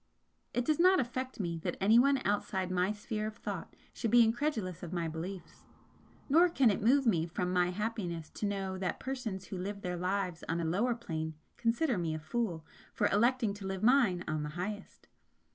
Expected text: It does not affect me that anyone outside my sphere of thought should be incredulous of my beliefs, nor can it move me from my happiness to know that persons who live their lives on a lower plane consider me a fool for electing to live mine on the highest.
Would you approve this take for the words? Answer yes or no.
yes